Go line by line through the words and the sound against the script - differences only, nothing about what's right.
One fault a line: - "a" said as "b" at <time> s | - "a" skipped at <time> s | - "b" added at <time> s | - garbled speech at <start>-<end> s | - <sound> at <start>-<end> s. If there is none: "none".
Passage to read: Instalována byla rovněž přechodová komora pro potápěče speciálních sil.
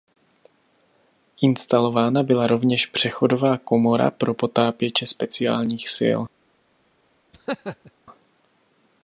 - laugh at 7.3-7.9 s